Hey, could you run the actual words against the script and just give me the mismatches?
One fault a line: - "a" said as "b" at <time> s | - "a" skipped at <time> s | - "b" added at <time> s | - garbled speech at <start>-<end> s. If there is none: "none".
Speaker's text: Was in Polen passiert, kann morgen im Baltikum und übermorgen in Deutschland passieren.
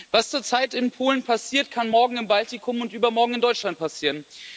- "zurzeit" added at 0.3 s